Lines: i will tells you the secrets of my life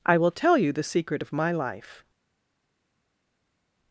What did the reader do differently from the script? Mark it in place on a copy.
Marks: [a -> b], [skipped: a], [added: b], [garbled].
i will [tells -> tell] you the [secrets -> secret] of my life